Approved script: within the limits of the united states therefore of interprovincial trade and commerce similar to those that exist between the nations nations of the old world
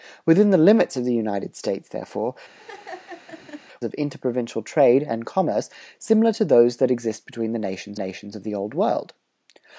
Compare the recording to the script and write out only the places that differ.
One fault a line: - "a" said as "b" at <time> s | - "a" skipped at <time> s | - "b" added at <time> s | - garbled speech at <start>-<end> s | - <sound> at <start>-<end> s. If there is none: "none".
- laugh at 2.6-3.6 s